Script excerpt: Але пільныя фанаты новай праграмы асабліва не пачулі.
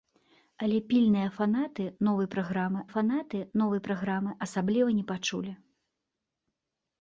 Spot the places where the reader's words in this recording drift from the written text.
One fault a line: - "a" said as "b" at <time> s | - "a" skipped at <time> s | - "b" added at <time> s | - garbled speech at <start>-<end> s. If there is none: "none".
- "фанаты новай праграмы" added at 2.9 s